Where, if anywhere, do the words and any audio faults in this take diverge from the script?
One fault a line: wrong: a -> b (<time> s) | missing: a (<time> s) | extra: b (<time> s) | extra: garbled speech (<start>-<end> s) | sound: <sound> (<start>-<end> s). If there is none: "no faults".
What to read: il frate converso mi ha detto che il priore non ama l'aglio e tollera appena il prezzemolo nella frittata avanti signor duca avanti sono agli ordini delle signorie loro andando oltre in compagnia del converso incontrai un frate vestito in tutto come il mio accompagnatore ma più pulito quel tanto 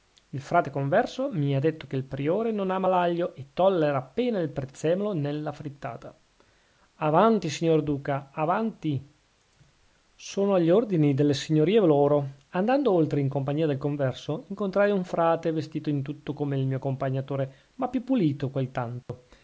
sound: dropout (19.0-19.1 s)